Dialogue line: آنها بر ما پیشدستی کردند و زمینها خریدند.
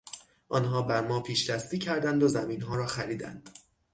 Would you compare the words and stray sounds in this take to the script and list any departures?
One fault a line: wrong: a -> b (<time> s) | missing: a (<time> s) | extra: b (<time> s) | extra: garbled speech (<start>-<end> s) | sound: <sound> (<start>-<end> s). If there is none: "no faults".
extra: را (2.7 s)